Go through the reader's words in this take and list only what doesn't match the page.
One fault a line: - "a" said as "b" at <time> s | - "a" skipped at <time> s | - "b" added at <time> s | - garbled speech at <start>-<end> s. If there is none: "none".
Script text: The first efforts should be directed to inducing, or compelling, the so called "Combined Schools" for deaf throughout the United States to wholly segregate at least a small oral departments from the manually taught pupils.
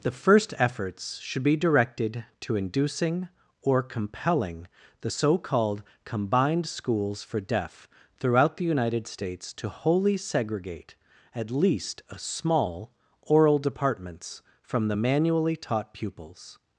none